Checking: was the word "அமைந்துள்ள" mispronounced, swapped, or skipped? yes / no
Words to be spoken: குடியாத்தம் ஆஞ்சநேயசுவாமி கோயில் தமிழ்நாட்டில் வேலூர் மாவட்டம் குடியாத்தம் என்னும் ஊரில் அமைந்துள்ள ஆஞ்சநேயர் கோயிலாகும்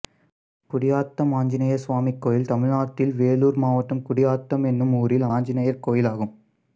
yes